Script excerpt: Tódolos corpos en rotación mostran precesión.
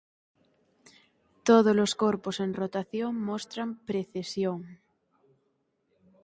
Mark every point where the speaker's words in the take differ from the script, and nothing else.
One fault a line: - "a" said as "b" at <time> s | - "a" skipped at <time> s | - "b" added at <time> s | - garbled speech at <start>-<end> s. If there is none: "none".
none